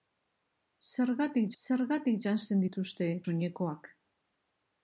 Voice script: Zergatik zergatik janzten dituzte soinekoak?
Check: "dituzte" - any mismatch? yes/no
no